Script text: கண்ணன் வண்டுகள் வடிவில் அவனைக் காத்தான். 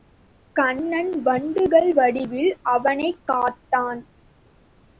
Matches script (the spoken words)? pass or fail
pass